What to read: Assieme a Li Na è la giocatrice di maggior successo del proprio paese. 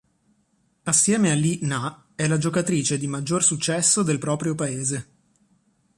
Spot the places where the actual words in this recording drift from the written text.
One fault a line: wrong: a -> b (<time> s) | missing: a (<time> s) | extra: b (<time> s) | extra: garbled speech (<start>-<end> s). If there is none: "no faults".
no faults